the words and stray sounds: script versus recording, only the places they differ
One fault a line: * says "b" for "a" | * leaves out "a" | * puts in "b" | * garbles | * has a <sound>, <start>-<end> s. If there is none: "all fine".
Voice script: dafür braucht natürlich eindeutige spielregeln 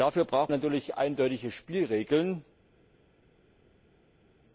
all fine